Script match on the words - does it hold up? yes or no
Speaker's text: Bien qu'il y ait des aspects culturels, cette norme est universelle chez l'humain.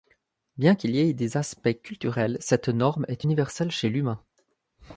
yes